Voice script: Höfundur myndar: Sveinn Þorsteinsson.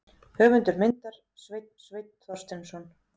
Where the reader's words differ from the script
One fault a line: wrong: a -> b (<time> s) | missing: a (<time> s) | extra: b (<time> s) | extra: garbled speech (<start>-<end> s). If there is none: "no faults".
extra: Sveinn (1.9 s)